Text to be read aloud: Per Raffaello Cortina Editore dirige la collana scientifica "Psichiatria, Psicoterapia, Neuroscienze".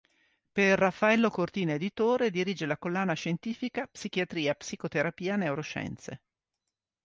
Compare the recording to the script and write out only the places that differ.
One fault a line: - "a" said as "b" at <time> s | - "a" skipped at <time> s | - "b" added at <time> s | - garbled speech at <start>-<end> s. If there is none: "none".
none